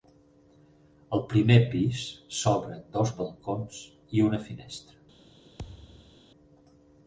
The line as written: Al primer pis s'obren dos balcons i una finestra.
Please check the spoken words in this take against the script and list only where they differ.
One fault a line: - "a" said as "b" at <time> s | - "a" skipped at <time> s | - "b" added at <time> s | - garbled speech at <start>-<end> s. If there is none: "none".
none